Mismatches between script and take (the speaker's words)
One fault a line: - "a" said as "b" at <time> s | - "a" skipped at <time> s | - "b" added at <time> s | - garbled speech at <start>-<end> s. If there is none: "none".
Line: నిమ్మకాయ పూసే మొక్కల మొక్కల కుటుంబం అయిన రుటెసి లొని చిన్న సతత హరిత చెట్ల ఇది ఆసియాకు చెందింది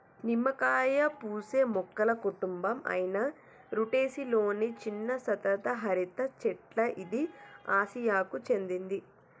- "మొక్కల" skipped at 2.1 s